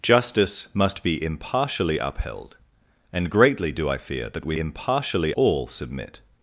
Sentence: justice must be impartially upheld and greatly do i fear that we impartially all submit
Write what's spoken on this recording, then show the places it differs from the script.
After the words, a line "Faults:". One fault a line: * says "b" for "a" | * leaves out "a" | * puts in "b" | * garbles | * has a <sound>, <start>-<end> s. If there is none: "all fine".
justice must be impartially upheld and greatly do i fear that we impartially all submit
Faults:
all fine